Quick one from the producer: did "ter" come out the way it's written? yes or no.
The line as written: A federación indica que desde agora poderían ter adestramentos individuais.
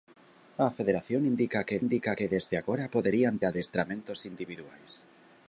no